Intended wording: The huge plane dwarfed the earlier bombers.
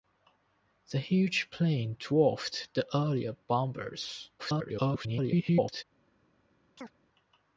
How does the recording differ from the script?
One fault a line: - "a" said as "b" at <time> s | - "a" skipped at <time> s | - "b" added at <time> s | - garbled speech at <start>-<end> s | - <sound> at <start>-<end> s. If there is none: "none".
- garbled speech at 4.4-5.8 s
- chirp at 6.8-6.9 s